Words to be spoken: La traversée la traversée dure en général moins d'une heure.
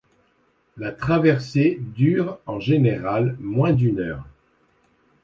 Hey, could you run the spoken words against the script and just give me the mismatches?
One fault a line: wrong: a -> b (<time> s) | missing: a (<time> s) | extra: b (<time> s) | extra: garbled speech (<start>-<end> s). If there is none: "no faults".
missing: la traversée (1.8 s)